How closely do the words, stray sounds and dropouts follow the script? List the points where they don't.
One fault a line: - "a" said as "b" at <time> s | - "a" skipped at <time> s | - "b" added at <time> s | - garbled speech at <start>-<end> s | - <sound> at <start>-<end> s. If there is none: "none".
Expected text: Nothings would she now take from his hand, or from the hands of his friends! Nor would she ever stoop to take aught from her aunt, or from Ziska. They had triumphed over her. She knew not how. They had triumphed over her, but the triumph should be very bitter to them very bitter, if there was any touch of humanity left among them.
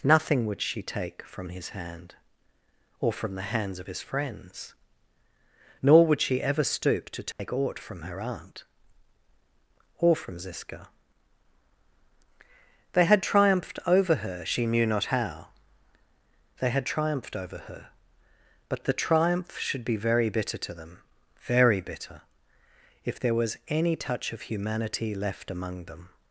- "Nothings" said as "Nothing" at 0.0 s
- "now" skipped at 0.8 s
- dropout at 7.3-7.4 s